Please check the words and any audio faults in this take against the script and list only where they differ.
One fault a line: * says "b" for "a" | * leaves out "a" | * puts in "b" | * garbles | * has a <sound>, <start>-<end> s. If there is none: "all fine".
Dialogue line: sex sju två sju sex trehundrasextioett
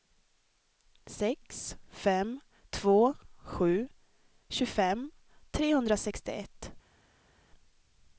* says "fem" for "sju"
* says "tjugofem" for "sex"